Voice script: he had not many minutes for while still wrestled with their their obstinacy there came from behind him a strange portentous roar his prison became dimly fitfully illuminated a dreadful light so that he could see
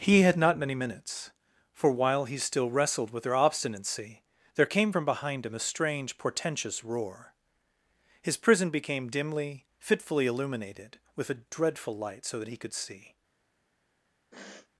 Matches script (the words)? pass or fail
fail